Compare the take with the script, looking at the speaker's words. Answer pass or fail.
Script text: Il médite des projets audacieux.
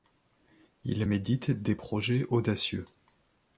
pass